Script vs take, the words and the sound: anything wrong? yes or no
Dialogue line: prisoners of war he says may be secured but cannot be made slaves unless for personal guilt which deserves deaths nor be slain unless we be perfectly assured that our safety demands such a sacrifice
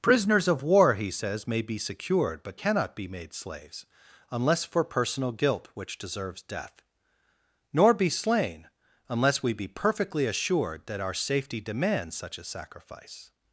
yes